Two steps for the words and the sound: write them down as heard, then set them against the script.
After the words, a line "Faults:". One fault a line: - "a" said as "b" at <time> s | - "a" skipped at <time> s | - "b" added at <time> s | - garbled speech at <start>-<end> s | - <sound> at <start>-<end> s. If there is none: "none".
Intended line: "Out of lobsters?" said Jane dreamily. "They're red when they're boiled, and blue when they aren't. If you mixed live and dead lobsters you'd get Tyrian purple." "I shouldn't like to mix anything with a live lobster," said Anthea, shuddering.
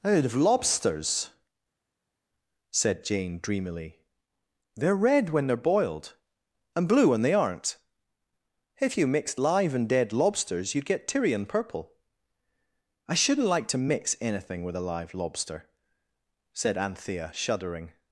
"Out of lobsters?" said Jane dreamily. "They're red when they're boiled, and blue when they aren't. If you mixed live and dead lobsters you'd get Tyrian purple." "I shouldn't like to mix anything with a live lobster," said Anthea, shuddering.
Faults:
none